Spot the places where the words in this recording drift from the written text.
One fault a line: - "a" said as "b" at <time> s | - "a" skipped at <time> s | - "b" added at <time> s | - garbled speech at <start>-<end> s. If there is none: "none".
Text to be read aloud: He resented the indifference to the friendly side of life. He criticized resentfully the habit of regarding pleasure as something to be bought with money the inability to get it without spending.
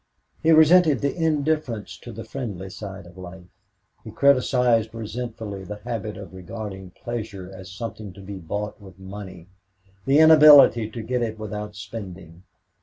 none